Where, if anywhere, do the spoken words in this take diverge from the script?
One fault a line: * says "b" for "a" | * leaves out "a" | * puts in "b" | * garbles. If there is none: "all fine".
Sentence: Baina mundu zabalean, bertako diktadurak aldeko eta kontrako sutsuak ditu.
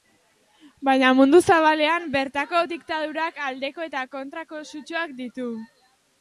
all fine